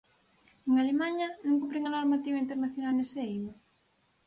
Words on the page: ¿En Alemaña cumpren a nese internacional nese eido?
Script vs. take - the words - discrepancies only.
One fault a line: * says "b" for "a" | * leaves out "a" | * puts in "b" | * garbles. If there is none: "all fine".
* puts in "non"
* says "normativa" for "nese"